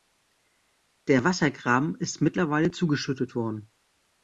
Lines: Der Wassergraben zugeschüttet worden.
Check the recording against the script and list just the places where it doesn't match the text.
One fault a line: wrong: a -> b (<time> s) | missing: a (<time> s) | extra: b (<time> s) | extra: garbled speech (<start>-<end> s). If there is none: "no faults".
extra: ist mittlerweile (1.9 s)